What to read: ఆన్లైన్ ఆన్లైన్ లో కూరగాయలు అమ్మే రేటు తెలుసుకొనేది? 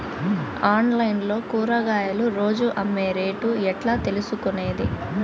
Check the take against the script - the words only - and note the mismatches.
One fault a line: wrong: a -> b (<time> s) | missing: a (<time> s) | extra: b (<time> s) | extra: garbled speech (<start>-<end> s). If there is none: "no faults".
missing: ఆన్లైన్ (1.2 s)
extra: రోజు (2.4 s)
extra: ఎట్లా (3.7 s)